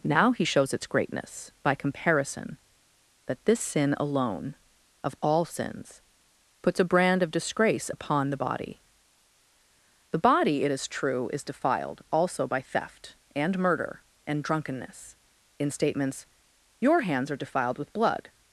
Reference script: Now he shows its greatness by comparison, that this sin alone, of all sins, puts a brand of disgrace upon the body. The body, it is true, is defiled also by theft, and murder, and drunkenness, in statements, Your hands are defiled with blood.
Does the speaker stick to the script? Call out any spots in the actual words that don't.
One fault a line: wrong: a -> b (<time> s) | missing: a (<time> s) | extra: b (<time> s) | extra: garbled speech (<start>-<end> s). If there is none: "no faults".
no faults